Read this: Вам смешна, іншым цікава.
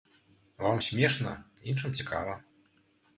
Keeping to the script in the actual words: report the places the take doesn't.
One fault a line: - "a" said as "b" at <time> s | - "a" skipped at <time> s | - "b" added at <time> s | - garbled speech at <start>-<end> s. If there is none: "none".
none